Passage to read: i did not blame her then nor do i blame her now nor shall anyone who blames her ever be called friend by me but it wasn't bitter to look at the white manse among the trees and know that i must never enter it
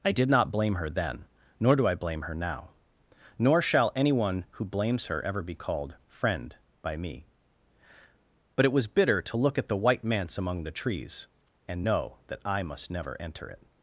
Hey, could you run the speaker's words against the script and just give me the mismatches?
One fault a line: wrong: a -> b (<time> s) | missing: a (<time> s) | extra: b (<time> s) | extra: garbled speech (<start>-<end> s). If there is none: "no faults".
wrong: wasn't -> was (8.7 s)